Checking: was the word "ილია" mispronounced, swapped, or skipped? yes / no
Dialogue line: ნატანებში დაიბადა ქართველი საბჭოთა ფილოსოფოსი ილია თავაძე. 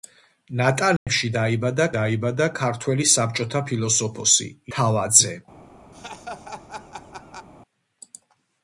yes